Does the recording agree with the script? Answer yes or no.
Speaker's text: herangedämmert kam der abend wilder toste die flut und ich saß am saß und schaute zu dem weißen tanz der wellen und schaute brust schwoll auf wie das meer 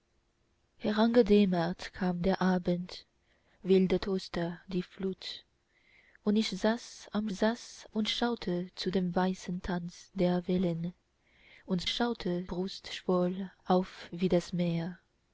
yes